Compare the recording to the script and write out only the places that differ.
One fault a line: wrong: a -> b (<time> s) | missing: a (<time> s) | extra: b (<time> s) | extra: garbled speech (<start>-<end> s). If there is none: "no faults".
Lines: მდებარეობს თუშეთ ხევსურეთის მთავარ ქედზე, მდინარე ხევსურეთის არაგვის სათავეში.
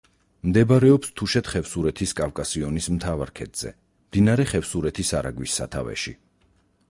extra: კავკასიონის (2.2 s)